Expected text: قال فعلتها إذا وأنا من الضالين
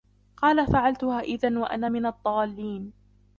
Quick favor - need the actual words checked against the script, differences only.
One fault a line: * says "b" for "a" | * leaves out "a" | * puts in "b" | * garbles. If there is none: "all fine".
all fine